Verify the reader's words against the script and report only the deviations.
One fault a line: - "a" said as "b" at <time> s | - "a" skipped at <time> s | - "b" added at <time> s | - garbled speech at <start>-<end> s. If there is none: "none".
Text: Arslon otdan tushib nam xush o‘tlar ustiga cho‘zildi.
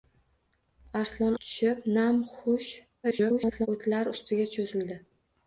- "otdan" skipped at 1.4 s
- garbled speech at 3.0-3.7 s